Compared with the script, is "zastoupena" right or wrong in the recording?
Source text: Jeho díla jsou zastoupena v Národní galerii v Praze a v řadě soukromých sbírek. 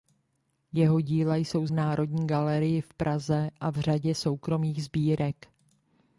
wrong